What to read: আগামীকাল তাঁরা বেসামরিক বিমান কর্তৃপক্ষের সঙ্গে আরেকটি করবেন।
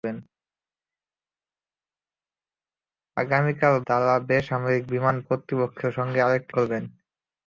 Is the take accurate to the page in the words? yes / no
yes